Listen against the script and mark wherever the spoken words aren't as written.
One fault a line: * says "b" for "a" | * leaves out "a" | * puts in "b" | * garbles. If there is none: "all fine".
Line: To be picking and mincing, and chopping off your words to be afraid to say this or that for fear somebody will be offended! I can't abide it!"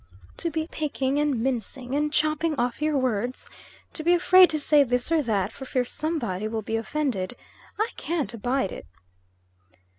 all fine